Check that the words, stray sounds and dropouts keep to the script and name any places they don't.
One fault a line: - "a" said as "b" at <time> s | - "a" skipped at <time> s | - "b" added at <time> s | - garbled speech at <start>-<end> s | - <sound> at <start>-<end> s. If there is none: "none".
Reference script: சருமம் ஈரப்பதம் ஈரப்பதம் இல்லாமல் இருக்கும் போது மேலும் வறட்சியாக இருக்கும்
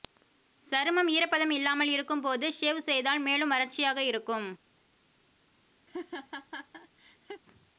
- "ஈரப்பதம்" skipped at 1.5 s
- "ஷேவ் செய்தால்" added at 2.5 s
- laugh at 5.9-7.4 s